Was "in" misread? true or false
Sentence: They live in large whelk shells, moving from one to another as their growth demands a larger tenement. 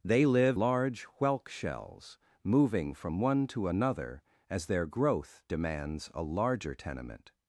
true